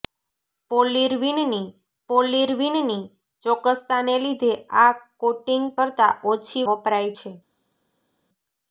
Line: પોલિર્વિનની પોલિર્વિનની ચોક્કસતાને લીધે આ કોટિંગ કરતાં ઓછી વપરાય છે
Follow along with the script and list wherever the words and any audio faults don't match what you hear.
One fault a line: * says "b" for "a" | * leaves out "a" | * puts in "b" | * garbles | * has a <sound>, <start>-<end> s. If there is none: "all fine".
all fine